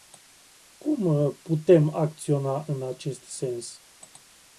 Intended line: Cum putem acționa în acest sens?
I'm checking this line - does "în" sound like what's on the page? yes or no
yes